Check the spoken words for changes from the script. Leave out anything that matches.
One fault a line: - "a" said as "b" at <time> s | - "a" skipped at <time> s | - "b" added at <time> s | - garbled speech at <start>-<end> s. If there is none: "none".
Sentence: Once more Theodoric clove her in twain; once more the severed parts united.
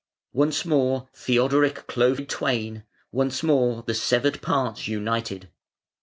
- "her" skipped at 2.2 s